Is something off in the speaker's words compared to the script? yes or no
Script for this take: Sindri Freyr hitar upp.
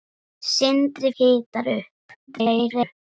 yes